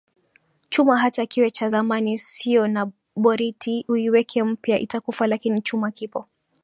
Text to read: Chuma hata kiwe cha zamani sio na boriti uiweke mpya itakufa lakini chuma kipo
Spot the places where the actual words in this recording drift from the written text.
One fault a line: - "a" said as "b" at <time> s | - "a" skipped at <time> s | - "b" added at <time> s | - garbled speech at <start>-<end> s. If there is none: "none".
none